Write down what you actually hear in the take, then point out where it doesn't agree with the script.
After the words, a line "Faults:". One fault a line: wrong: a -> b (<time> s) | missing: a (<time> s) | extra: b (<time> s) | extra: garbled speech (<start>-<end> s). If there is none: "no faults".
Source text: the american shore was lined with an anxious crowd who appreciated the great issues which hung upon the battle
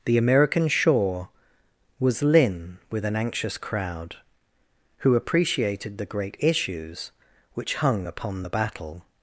the american shore was lin with an anxious crowd who appreciated the great issues which hung upon the battle
Faults:
wrong: lined -> lin (2.2 s)